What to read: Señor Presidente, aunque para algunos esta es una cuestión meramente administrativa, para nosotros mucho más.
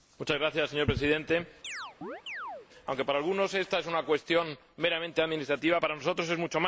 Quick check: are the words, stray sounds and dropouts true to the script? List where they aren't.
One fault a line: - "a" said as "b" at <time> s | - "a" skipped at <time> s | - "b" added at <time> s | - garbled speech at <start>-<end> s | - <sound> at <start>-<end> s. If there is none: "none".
- chirp at 1.6-2.7 s
- "es" added at 6.3 s